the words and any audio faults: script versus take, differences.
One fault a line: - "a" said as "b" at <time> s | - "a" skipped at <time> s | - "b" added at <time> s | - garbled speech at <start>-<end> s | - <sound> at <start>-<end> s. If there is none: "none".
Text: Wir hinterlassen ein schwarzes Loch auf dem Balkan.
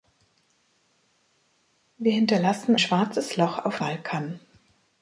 - "ein" skipped at 2.7 s
- "dem" skipped at 3.8 s